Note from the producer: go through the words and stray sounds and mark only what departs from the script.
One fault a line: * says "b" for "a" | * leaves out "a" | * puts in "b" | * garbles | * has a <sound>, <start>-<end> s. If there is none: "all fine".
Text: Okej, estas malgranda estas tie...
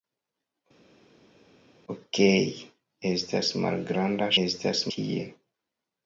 all fine